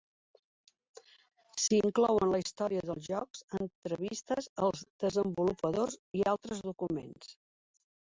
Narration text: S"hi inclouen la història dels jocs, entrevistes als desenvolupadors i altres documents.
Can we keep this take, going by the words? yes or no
yes